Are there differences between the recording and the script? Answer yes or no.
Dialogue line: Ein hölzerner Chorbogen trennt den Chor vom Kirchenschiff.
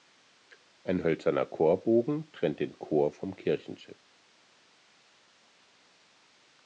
no